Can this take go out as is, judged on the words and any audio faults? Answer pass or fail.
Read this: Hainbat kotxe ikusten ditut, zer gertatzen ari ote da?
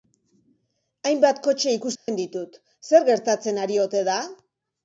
fail